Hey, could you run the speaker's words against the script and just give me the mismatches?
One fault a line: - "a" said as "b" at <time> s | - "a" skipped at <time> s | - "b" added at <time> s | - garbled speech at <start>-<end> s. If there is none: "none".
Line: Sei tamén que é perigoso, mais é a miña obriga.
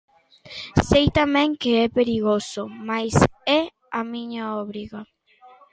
none